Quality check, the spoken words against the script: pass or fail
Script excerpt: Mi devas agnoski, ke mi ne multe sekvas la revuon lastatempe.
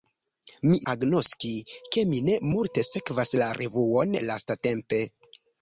fail